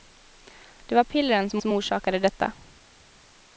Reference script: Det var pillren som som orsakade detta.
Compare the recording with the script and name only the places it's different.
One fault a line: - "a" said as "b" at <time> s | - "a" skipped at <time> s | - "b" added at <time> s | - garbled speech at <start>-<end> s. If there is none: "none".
none